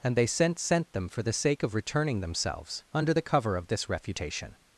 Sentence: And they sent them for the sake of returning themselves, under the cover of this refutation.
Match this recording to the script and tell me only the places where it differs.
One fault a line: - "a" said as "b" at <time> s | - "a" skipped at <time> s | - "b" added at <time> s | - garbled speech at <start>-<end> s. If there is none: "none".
- "sent" added at 0.6 s